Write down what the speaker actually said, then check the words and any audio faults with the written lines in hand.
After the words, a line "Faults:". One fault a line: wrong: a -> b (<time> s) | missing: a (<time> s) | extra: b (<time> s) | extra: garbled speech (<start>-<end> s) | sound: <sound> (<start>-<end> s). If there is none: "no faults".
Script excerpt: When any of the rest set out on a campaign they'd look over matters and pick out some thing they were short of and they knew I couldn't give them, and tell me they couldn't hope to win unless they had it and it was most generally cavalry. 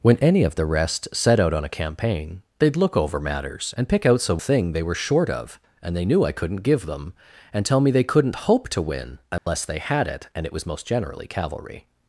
When any of the rest set out on a campaign they'd look over matters and pick out some thing they were short of and they knew I couldn't give them, and tell me they couldn't hope to win unless they had it and it was most generally cavalry.
Faults:
sound: dropout (9.4-9.5 s)